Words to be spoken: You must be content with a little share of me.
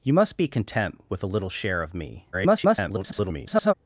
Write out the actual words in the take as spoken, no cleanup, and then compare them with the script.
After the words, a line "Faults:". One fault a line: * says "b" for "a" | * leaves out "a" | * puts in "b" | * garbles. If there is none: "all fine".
You must be content with a little share of me. [garbled]
Faults:
* garbles